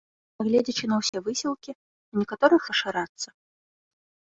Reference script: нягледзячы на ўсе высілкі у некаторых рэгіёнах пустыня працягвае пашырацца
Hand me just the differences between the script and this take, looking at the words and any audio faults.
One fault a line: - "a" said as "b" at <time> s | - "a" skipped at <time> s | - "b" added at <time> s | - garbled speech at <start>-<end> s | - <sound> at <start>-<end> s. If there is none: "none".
- dropout at 1.1-1.1 s
- "рэгіёнах пустыня працягвае" skipped at 2.6 s